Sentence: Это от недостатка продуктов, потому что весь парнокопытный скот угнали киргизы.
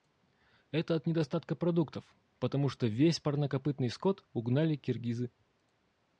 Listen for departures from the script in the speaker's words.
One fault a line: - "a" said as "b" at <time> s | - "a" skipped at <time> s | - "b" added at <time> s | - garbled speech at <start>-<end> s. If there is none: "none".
none